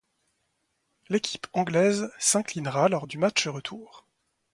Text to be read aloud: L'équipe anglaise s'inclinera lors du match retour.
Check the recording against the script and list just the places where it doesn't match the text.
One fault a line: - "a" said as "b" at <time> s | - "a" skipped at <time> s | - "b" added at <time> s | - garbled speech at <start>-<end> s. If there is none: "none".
none